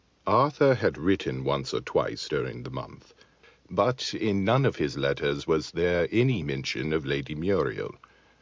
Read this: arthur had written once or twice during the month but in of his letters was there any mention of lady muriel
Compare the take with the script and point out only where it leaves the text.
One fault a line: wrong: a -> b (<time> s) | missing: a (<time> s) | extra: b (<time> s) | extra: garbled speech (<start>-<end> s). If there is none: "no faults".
extra: none (4.4 s)